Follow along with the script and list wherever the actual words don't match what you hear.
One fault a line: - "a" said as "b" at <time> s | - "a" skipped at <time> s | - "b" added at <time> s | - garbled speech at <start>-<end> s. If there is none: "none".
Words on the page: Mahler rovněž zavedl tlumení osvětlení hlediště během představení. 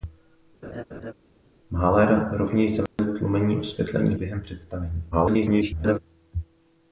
- "hlediště" skipped at 4.1 s
- garbled speech at 5.1-6.0 s